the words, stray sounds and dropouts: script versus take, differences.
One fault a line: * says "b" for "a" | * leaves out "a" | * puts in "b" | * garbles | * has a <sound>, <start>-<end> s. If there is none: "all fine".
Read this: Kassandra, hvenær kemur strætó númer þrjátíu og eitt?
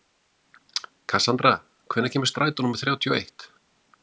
all fine